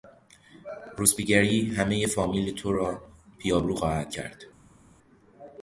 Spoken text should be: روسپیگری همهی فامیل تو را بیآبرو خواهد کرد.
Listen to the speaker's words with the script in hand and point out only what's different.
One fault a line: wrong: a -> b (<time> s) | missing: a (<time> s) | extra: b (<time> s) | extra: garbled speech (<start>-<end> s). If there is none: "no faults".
no faults